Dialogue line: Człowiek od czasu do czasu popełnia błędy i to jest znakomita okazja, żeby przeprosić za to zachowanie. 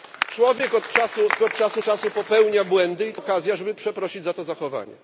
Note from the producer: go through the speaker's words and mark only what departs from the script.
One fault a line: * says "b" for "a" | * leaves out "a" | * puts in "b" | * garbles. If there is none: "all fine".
* leaves out "do"
* leaves out "jest znakomita"